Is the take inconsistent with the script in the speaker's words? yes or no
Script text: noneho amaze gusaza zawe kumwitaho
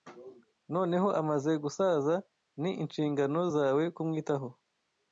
yes